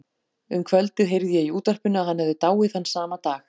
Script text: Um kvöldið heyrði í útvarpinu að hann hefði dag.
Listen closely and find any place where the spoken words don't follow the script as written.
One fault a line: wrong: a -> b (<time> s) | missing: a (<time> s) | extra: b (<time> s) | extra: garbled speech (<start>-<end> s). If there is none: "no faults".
extra: ég (1.4 s)
extra: dáið þann sama (2.5 s)